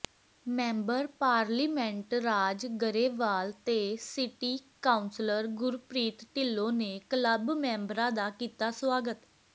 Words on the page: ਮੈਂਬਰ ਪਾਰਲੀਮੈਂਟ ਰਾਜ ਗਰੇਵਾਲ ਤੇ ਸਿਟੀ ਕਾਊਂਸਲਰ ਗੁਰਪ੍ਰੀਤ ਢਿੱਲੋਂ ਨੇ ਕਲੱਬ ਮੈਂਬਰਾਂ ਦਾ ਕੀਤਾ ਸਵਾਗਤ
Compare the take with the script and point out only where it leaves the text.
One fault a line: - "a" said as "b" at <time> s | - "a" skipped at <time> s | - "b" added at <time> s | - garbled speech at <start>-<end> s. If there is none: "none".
none